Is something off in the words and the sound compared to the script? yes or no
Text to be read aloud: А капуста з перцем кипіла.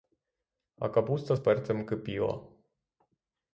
no